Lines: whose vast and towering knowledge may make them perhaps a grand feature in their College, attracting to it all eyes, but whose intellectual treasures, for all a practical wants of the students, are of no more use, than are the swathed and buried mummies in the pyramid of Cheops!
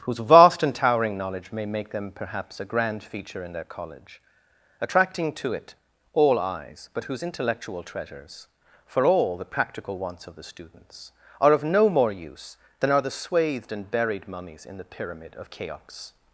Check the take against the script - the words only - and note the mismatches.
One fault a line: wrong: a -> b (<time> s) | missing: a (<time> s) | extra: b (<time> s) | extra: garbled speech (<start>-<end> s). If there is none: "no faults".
wrong: a -> the (9.4 s)